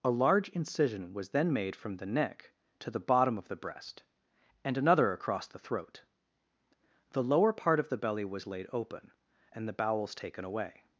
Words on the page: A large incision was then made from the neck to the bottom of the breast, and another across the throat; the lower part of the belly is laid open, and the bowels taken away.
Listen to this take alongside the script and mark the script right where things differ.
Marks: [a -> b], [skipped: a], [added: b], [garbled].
A large incision was then made from the neck to the bottom of the breast, and another across the throat; the lower part of the belly [is -> was] laid open, and the bowels taken away.